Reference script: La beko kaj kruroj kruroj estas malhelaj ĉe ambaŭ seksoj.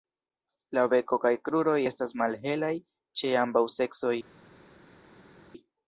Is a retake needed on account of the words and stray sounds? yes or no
yes